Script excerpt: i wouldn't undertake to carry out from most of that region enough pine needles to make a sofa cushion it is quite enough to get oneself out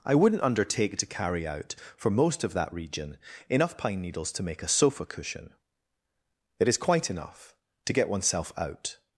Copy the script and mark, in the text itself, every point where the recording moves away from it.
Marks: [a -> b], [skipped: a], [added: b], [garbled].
i wouldn't undertake to carry out [from -> for] most of that region enough pine needles to make a sofa cushion it is quite enough to get oneself out